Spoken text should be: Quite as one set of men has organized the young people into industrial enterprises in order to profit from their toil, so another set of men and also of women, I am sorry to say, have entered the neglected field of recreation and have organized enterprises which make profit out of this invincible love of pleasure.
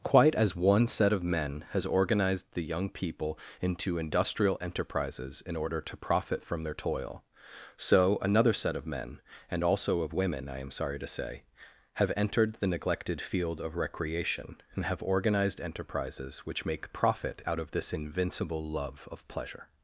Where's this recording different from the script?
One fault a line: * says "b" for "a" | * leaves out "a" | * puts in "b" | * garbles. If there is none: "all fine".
all fine